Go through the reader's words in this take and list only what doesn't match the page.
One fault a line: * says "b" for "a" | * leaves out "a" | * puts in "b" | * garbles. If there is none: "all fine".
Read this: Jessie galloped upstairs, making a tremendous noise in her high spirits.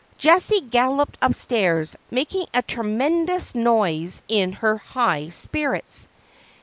all fine